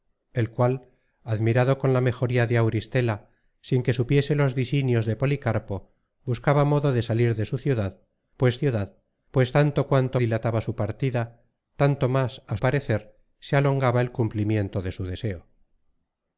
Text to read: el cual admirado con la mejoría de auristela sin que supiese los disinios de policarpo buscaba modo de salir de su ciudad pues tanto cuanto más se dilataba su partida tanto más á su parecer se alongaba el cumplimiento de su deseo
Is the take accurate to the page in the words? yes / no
no